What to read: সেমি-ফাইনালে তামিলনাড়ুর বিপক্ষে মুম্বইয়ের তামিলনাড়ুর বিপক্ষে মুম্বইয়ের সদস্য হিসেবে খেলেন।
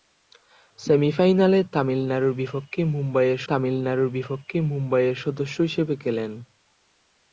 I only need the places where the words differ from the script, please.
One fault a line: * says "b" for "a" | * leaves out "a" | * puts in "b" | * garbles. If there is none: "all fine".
all fine